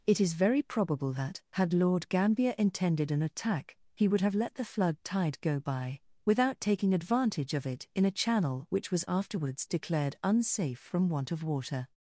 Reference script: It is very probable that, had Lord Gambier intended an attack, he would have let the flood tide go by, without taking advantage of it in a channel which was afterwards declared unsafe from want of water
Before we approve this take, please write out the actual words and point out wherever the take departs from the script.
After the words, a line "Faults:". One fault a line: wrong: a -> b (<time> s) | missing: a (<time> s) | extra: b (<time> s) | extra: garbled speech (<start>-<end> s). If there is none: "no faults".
It is very probable that, had Lord Gambier intended an attack, he would have let the flood tide go by, without taking advantage of it in a channel which was afterwards declared unsafe from want of water
Faults:
no faults